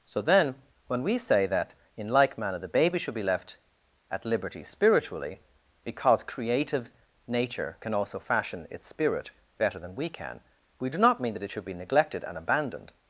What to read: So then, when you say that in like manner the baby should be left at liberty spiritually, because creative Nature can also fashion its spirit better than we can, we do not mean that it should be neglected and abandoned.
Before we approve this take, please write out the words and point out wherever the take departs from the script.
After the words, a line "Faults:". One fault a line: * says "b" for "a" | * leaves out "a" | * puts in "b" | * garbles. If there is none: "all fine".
So then, when we say that in like manner the baby should be left at liberty spiritually, because creative Nature can also fashion its spirit better than we can, we do not mean that it should be neglected and abandoned.
Faults:
* says "we" for "you"